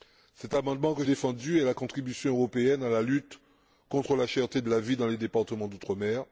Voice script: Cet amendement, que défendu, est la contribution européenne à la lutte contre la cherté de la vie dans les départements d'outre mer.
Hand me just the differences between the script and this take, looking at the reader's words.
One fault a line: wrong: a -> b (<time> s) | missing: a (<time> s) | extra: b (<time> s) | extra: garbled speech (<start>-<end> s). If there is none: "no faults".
no faults